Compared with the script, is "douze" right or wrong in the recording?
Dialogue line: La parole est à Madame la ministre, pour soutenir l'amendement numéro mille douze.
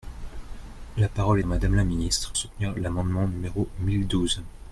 right